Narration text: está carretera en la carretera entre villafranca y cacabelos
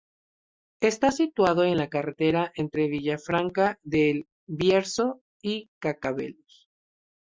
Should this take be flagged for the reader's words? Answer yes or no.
yes